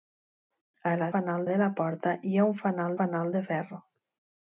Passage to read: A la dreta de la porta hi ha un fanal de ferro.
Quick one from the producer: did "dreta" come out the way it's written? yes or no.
no